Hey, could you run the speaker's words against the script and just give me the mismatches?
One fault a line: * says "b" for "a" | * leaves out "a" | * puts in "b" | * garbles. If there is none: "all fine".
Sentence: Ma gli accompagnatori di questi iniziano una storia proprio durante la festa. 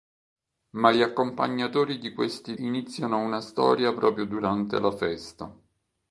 all fine